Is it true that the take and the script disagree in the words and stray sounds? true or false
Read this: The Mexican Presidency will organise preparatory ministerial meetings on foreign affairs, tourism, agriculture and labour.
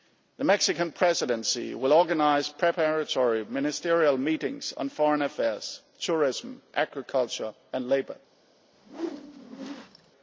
true